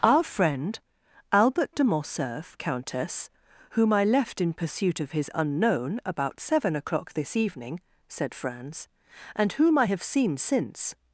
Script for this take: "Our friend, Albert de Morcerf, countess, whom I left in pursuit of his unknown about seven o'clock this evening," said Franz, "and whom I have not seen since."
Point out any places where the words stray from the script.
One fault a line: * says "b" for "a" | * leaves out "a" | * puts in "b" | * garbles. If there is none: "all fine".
* leaves out "not"